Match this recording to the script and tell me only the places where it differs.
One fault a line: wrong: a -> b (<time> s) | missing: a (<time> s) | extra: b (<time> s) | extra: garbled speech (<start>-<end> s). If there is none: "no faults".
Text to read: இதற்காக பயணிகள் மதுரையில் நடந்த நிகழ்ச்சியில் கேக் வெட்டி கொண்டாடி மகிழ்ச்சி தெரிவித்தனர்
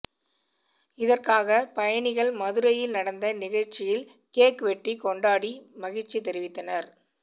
no faults